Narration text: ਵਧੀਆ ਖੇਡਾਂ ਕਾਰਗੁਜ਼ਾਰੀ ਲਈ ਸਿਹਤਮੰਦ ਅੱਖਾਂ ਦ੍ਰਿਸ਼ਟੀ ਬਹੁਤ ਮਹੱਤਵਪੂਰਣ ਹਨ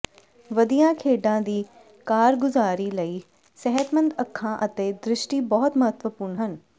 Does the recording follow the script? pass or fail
fail